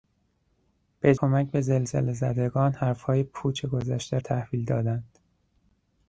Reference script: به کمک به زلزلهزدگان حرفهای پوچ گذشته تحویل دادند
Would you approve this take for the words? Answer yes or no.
yes